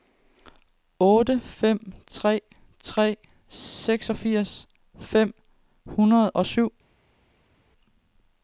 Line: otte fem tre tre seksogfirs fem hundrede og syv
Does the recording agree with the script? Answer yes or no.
yes